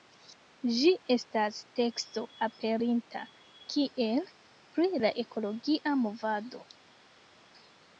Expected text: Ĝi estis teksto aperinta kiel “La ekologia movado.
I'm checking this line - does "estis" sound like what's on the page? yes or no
no